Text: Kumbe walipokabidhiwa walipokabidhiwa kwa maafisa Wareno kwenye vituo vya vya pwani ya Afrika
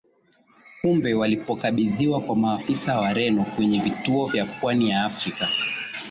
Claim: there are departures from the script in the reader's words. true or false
true